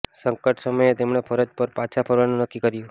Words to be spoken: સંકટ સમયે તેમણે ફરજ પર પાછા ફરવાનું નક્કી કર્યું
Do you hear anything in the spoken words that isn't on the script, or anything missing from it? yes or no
no